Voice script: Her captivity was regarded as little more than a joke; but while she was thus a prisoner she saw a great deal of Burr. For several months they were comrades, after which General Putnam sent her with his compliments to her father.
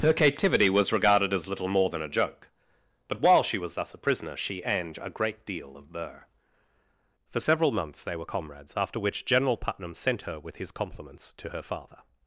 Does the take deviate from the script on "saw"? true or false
true